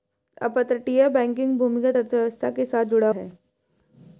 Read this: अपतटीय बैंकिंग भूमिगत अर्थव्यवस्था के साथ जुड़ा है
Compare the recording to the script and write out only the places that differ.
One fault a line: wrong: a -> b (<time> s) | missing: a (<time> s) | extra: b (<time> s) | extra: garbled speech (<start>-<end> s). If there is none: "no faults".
no faults